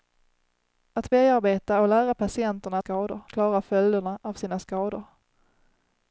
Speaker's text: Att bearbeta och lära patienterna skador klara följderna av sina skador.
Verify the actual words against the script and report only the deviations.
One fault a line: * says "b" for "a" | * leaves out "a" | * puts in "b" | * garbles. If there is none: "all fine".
all fine